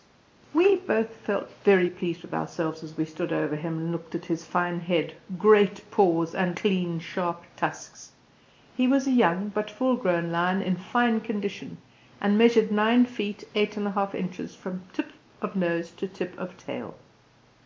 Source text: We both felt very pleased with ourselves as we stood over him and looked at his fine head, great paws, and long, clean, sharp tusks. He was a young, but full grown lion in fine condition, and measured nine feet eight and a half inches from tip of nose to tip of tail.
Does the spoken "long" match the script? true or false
false